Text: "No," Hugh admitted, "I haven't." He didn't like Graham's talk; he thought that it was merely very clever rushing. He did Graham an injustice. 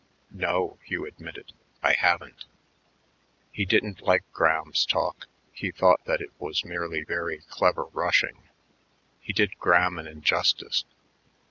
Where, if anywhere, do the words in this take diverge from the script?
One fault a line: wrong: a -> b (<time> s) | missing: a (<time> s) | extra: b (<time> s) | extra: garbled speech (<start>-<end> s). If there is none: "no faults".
no faults